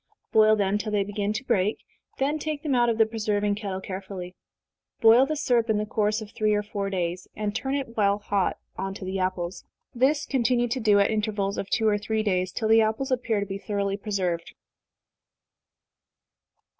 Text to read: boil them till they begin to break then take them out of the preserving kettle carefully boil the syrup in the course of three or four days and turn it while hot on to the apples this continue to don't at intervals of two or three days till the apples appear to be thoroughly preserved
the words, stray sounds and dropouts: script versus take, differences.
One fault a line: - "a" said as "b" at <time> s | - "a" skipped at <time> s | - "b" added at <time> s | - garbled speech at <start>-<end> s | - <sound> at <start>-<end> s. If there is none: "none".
- "don't" said as "do" at 10.8 s